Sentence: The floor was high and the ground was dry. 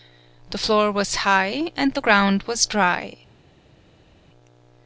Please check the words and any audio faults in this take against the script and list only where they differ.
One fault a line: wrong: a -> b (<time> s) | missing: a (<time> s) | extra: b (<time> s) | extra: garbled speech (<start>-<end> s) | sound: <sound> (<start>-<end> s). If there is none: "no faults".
no faults